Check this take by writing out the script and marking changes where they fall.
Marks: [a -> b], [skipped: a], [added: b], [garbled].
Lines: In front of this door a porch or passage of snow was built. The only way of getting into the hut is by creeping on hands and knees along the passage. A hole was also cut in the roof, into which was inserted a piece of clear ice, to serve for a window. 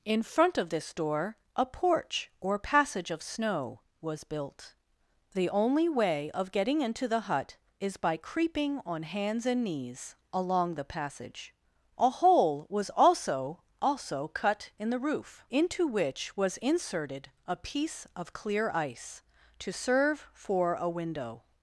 In front of this door a porch or passage of snow was built. The only way of getting into the hut is by creeping on hands and knees along the passage. A hole was also [added: also] cut in the roof, into which was inserted a piece of clear ice, to serve for a window.